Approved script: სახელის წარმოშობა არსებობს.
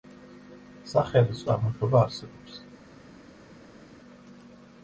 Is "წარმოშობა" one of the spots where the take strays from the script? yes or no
no